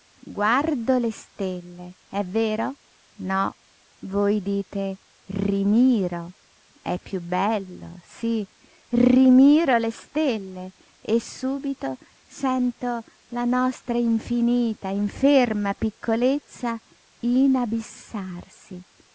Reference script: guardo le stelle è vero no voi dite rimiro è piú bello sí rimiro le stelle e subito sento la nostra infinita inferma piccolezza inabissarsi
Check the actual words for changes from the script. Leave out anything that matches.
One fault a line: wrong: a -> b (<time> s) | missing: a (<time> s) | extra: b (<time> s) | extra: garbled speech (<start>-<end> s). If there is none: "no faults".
no faults